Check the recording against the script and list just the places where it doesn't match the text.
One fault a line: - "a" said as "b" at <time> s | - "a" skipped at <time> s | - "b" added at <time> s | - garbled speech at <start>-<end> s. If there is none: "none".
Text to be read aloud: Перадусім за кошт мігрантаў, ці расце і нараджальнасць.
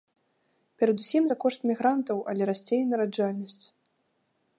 - "ці" said as "але" at 2.3 s